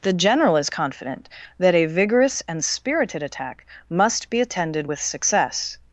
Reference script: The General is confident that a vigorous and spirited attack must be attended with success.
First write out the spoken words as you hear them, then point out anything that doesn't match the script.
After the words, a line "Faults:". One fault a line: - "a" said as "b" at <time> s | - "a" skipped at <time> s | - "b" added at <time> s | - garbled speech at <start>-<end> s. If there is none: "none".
The General is confident that a vigorous and spirited attack must be attended with success.
Faults:
none